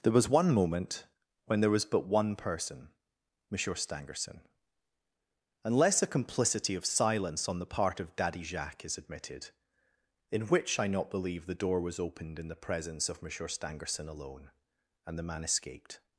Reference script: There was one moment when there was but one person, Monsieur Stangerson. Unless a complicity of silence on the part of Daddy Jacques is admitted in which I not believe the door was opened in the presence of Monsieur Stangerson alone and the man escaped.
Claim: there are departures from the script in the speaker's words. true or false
false